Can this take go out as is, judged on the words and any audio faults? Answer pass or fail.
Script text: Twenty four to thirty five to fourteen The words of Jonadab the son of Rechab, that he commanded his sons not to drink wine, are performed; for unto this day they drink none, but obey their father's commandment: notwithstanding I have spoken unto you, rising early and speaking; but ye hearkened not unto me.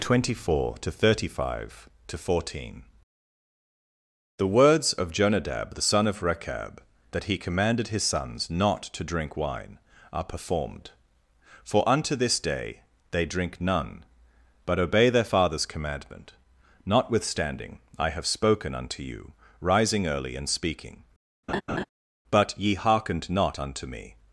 fail